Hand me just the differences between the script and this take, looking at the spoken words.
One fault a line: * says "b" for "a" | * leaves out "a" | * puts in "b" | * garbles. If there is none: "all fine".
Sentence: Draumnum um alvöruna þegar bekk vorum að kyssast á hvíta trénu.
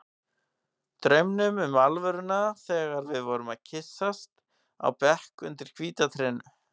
* says "við" for "bekk"
* puts in "bekk undir"